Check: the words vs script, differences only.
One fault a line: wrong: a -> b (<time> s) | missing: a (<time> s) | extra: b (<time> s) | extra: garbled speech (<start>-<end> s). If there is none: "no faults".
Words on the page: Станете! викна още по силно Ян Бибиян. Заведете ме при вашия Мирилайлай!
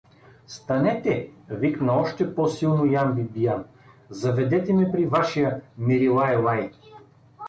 no faults